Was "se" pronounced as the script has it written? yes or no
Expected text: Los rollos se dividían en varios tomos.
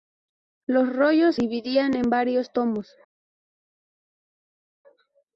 no